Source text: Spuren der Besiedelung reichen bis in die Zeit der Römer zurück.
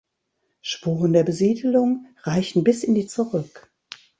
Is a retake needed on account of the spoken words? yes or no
yes